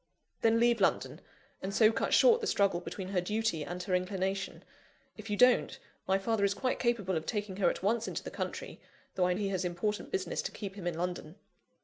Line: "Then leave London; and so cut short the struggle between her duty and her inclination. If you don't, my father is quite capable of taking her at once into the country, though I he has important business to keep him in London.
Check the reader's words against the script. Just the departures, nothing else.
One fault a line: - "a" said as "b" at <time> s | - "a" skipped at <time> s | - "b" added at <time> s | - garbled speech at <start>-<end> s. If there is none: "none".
none